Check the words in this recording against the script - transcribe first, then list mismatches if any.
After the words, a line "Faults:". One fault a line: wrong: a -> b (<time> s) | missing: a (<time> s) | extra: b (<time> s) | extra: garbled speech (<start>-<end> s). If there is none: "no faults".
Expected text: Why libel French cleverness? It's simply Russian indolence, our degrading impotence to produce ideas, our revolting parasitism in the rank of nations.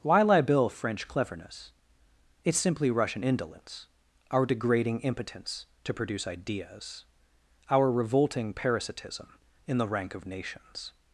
Why libel French cleverness? It's simply Russian indolence, our degrading impotence to produce ideas, our revolting parasitism in the rank of nations.
Faults:
no faults